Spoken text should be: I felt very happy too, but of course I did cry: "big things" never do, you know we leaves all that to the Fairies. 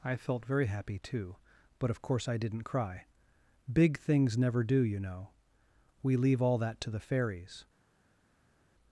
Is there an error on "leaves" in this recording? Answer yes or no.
yes